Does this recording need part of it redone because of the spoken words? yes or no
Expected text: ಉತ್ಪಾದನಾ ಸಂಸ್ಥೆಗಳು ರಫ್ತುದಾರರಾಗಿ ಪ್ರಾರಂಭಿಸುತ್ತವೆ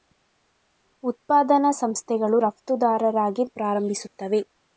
no